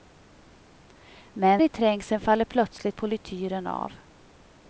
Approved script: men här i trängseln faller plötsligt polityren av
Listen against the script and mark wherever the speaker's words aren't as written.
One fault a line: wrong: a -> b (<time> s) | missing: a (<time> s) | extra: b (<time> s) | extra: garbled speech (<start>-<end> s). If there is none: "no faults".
missing: här (1.6 s)